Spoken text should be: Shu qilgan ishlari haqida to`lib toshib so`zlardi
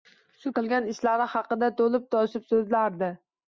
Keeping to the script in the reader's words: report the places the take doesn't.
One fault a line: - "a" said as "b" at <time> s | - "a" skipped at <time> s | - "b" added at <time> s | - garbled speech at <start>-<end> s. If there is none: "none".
none